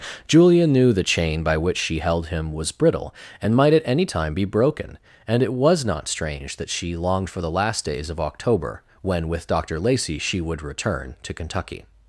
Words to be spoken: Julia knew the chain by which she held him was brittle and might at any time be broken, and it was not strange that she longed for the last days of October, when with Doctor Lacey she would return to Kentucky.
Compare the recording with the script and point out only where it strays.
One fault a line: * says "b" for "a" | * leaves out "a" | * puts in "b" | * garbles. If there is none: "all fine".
all fine